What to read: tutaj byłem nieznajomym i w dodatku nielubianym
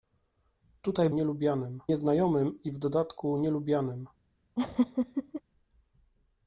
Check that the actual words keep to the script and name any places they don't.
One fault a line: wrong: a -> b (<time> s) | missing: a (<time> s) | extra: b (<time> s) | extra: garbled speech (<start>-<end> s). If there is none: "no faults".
wrong: byłem -> nielubianym (1.1 s)